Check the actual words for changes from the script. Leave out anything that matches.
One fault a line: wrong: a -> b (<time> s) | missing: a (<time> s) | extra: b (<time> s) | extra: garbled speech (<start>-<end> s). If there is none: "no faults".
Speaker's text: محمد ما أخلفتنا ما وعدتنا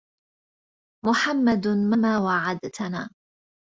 missing: أخلفتنا (2.0 s)